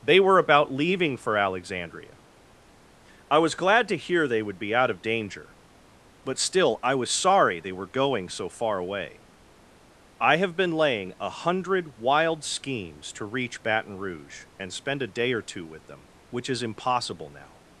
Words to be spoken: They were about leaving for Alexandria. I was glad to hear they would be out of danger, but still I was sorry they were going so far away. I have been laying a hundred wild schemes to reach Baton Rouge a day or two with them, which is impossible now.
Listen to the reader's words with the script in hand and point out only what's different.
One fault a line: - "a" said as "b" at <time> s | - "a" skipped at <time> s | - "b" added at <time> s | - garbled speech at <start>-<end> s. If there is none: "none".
- "and spend" added at 14.6 s